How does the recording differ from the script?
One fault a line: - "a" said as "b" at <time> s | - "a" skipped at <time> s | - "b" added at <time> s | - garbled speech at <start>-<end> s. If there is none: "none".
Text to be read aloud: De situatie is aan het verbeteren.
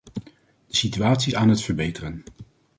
- "is" skipped at 1.3 s